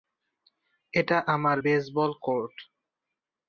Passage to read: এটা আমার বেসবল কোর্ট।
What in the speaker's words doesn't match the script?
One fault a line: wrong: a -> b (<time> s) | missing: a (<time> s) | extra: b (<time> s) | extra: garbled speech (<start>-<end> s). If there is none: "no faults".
no faults